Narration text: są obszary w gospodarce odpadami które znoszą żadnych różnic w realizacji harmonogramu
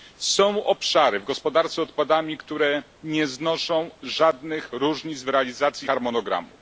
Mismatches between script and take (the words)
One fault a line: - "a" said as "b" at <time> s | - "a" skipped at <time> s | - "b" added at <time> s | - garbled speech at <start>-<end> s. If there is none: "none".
- "nie" added at 3.0 s